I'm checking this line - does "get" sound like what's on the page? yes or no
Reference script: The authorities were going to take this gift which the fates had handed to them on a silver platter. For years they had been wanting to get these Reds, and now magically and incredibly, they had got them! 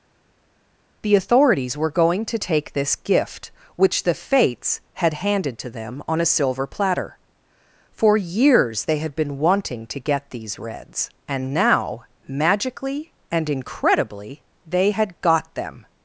yes